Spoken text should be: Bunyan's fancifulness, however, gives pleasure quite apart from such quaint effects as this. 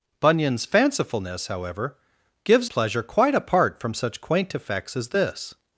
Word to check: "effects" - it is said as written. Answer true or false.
true